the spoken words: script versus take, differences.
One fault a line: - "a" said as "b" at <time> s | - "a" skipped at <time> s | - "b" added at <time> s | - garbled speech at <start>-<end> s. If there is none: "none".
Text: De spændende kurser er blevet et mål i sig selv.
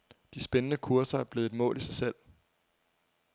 none